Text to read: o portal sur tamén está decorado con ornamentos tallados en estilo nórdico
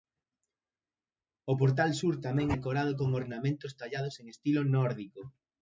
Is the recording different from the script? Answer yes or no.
yes